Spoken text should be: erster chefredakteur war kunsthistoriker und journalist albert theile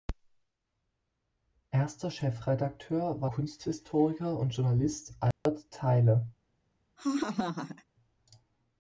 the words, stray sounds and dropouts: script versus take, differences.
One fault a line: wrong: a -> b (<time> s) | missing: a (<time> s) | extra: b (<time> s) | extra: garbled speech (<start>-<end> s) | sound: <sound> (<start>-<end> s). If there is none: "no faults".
sound: dropout (5.3-5.5 s)
sound: laugh (7.0-7.9 s)